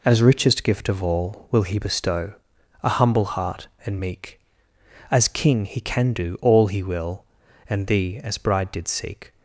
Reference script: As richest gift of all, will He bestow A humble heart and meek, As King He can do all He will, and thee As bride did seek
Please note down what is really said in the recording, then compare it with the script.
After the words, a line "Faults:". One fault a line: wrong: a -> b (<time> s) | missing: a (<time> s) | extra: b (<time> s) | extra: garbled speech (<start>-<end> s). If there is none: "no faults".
As richest gift of all, will He bestow A humble heart and meek, As King He can do all He will, and thee As bride did seek
Faults:
no faults